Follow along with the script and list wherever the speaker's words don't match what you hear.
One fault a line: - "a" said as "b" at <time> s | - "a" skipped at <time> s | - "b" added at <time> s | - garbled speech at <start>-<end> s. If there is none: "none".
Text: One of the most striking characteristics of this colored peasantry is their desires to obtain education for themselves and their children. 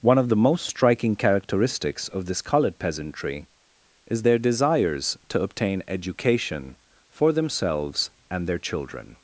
none